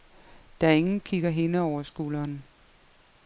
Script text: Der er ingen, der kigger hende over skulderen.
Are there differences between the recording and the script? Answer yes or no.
yes